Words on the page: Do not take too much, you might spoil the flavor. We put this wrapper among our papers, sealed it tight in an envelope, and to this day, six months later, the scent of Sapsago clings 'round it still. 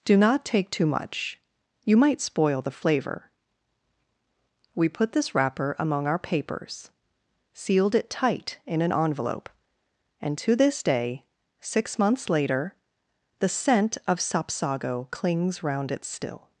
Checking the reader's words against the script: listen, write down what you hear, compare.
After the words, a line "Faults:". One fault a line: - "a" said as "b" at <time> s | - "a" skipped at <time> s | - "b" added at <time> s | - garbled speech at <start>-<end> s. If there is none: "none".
Do not take too much, you might spoil the flavor. We put this wrapper among our papers, sealed it tight in an envelope, and to this day, six months later, the scent of Sapsago clings 'round it still.
Faults:
none